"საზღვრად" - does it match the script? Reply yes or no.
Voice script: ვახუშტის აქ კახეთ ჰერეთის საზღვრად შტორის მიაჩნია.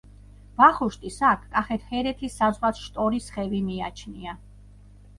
yes